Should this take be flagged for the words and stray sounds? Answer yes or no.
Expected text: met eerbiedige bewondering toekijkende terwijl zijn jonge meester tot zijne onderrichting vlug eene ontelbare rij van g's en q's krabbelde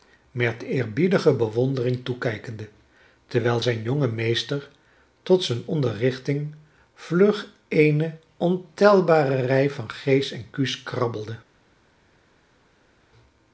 no